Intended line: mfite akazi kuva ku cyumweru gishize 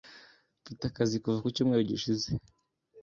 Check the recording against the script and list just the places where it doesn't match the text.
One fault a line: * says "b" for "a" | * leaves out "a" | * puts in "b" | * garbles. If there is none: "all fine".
all fine